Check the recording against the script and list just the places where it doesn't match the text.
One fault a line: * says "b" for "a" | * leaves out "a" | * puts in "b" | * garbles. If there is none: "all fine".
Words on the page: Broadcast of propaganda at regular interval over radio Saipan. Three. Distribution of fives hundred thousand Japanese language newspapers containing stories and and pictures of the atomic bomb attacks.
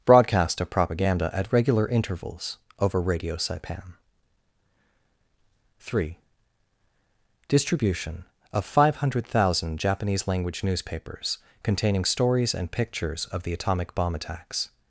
* says "intervals" for "interval"
* says "five" for "fives"
* leaves out "and"